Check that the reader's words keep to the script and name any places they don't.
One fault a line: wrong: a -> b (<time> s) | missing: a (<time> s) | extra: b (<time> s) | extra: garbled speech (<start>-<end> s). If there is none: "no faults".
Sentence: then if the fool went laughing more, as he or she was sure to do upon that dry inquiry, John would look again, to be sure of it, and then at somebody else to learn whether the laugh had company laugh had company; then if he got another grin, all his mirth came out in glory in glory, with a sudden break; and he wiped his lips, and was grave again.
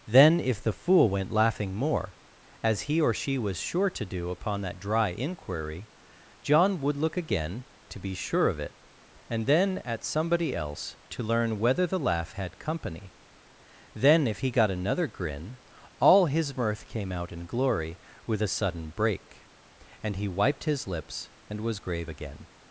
missing: laugh had company (13.1 s)
missing: in glory (18.0 s)